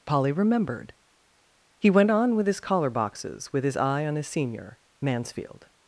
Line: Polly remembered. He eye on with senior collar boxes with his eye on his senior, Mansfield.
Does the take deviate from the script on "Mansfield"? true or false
false